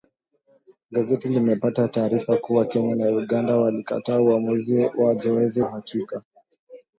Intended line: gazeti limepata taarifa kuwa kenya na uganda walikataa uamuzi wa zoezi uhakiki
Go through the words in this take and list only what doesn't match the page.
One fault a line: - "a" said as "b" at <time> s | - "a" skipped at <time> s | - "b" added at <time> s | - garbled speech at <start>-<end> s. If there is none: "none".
none